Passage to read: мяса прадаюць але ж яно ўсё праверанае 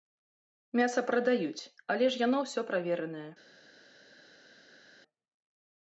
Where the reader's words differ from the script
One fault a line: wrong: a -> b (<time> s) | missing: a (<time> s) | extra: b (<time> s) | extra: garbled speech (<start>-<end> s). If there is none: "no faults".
no faults